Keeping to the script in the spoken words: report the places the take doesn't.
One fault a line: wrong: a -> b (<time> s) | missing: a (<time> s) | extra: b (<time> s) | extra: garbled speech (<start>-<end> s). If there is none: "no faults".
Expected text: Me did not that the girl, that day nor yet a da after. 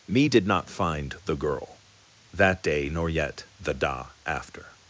wrong: that -> find (0.7 s)
wrong: a -> the (3.6 s)